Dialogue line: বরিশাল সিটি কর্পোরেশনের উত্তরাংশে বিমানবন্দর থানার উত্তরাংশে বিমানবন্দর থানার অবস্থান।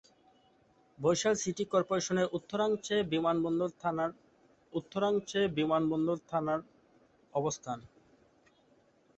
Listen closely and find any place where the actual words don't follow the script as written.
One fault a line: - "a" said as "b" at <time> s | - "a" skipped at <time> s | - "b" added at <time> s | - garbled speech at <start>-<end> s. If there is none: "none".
none